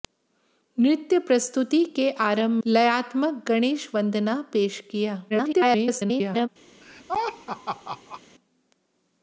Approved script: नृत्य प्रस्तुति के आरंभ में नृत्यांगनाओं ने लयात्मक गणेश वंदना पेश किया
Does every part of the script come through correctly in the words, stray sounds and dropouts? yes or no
no